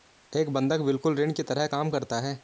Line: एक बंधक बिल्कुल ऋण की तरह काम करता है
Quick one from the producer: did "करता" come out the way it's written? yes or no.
yes